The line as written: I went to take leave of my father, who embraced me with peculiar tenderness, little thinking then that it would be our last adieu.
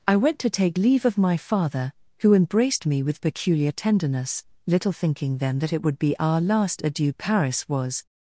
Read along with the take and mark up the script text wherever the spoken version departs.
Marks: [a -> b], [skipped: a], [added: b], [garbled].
I went to take leave of my father, who embraced me with peculiar tenderness, little thinking then that it would be our last adieu. [added: Paris was]